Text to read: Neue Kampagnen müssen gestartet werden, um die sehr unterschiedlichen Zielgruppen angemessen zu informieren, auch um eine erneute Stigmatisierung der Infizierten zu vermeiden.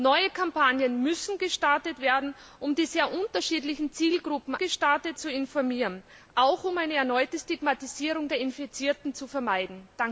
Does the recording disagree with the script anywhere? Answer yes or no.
yes